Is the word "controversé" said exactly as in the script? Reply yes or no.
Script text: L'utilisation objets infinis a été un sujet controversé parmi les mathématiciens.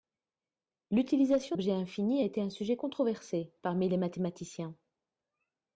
yes